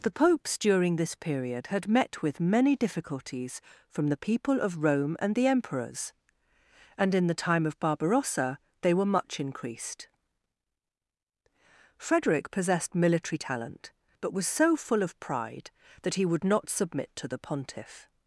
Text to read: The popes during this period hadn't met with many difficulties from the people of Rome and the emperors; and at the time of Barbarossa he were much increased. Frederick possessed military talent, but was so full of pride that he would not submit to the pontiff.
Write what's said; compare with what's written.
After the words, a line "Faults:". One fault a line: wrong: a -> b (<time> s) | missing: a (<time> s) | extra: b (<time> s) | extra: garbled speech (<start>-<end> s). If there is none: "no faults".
The popes during this period had met with many difficulties from the people of Rome and the emperors; and in the time of Barbarossa they were much increased. Frederick possessed military talent, but was so full of pride that he would not submit to the pontiff.
Faults:
wrong: hadn't -> had (1.7 s)
wrong: at -> in (7.1 s)
wrong: he -> they (8.8 s)